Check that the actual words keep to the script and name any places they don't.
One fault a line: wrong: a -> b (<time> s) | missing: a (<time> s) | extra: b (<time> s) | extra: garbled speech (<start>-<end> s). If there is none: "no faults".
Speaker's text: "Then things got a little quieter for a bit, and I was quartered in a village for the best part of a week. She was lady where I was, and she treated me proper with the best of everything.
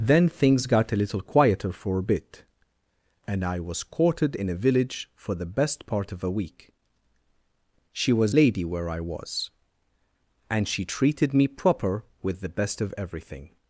no faults